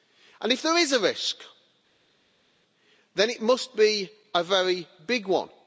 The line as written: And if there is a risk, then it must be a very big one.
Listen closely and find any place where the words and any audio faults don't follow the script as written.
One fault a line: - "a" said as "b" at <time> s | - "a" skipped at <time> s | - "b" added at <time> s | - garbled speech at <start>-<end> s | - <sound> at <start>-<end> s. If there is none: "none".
none